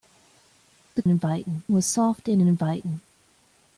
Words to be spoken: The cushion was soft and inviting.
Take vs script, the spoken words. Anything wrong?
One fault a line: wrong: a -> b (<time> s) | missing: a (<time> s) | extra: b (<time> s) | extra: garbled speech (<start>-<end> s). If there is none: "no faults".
wrong: cushion -> inviting (1.0 s)